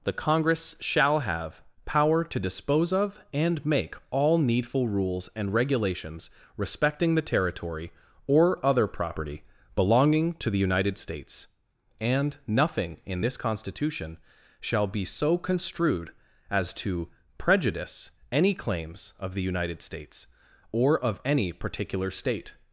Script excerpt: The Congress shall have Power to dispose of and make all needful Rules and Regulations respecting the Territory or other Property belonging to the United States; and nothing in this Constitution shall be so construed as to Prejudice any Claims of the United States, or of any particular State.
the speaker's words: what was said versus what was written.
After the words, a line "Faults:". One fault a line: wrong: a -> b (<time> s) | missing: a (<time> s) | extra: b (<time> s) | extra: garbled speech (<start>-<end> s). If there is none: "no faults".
The Congress shall have Power to dispose of and make all needful Rules and Regulations respecting the Territory or other Property belonging to the United States; and nothing in this Constitution shall be so construed as to Prejudice any Claims of the United States, or of any particular State.
Faults:
no faults